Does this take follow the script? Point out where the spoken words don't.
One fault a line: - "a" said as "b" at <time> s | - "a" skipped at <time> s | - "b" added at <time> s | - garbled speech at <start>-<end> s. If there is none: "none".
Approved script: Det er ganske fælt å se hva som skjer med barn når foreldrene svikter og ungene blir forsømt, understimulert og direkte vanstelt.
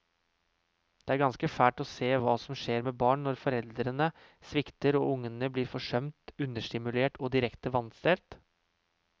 none